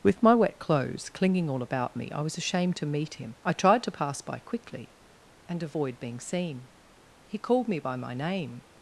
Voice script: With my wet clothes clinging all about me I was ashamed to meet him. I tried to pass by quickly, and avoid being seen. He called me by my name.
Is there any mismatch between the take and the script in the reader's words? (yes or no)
no